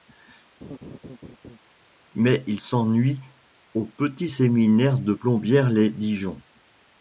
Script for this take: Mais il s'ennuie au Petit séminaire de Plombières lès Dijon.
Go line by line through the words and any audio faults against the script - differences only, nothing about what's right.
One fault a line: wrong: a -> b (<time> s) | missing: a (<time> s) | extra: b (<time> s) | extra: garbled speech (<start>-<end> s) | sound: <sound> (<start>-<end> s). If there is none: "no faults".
sound: laugh (0.6-1.6 s)